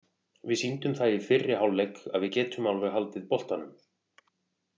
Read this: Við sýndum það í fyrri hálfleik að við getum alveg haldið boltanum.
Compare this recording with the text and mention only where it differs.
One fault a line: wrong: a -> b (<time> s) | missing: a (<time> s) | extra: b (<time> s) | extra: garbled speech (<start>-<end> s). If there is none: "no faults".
no faults